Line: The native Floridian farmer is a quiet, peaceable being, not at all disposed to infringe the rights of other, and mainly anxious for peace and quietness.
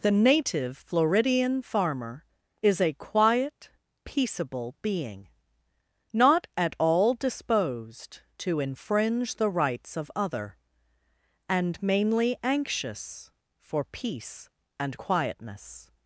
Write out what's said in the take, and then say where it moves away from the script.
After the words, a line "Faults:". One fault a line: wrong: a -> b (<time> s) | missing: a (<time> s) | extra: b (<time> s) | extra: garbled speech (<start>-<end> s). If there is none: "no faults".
The native Floridian farmer is a quiet, peaceable being, not at all disposed to infringe the rights of other, and mainly anxious for peace and quietness.
Faults:
no faults